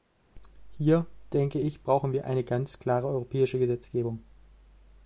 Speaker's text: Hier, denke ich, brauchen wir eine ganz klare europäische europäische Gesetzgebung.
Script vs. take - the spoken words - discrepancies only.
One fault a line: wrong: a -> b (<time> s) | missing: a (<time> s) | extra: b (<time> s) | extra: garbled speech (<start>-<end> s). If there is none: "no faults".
missing: europäische (3.6 s)